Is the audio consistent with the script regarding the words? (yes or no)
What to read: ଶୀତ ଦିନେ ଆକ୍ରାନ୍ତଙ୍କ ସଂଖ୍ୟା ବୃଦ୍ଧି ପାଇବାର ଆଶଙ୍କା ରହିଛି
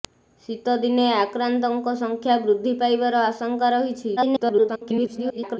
no